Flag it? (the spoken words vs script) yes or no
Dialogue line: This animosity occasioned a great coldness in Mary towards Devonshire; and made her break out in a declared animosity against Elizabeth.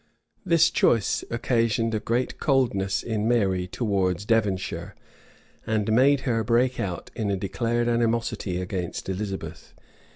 yes